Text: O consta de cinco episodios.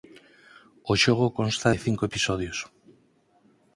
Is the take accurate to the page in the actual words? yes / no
no